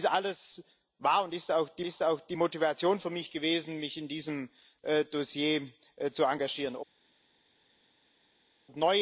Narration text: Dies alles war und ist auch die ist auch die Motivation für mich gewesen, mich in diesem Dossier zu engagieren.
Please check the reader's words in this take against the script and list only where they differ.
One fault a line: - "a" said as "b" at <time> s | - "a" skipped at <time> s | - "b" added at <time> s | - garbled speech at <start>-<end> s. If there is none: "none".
none